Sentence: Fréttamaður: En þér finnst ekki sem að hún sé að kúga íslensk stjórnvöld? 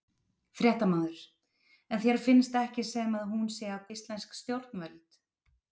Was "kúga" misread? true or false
true